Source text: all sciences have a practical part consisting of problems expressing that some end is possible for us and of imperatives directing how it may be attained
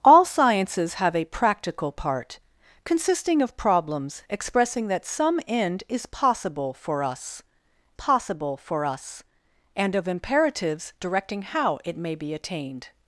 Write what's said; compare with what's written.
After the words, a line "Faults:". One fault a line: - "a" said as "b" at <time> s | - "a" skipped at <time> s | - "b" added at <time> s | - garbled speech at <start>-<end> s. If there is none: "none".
all sciences have a practical part consisting of problems expressing that some end is possible for us possible for us and of imperatives directing how it may be attained
Faults:
- "possible for us" added at 7.9 s